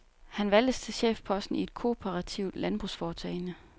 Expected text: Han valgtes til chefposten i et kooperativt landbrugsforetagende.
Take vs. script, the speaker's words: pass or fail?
pass